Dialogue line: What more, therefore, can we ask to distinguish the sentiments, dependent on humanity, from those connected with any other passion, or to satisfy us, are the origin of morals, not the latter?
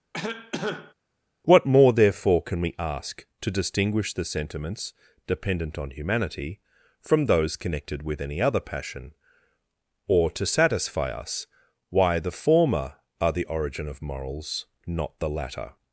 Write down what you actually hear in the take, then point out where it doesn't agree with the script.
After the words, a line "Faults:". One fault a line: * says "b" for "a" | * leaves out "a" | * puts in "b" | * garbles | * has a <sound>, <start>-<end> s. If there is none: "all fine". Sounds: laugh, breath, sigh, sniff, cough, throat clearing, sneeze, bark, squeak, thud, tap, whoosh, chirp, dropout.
What more, therefore, can we ask to distinguish the sentiments, dependent on humanity, from those connected with any other passion, or to satisfy us, why the former are the origin of morals, not the latter?
Faults:
* has a cough, 0.1-0.9 s
* puts in "why the former"